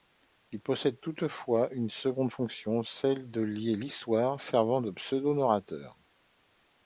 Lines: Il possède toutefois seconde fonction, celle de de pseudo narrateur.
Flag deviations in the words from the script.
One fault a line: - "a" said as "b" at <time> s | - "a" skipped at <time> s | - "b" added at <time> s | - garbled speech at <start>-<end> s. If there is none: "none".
- "une" added at 1.7 s
- "lier l'histoire servant" added at 3.4 s